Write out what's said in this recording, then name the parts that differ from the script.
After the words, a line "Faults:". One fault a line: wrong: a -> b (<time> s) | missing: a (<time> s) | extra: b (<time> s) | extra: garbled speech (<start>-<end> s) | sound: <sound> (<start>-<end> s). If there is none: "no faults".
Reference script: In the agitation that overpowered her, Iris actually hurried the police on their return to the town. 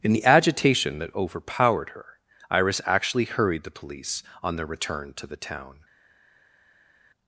In the agitation that overpowered her, Iris actually hurried the police on their return to the town.
Faults:
no faults